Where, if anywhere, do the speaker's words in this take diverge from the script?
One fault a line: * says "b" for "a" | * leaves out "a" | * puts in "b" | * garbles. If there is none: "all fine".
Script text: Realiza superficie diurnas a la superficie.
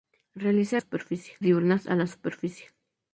all fine